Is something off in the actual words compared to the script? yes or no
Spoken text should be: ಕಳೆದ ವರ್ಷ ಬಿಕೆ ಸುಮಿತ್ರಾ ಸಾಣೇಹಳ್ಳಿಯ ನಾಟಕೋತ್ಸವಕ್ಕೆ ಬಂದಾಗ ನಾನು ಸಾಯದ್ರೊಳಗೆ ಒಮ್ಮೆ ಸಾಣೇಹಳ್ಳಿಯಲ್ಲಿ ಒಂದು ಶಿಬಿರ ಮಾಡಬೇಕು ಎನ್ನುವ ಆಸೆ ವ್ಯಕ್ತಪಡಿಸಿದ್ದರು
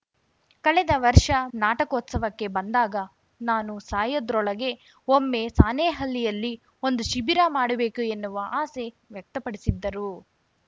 yes